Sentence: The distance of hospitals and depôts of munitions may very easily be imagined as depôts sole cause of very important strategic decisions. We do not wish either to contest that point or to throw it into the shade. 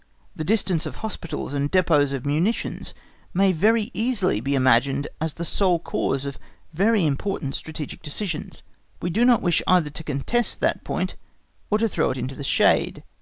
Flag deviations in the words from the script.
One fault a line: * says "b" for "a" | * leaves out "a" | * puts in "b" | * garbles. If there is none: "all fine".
* says "the" for "depôts"